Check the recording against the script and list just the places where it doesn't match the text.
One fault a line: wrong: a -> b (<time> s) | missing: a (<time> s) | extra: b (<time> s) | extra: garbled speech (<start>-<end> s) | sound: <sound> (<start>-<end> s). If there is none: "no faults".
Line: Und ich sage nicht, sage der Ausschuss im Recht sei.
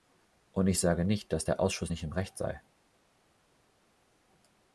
wrong: sage -> dass (1.3 s)
extra: nicht (1.9 s)